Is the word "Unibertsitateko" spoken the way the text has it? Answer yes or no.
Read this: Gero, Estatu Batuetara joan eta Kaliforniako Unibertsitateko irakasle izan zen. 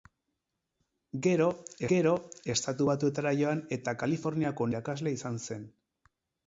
no